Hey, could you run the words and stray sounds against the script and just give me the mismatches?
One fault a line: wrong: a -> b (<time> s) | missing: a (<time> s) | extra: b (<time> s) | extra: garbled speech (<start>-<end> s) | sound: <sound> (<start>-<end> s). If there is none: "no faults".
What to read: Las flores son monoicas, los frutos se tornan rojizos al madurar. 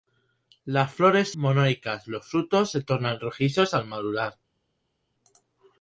missing: son (1.3 s)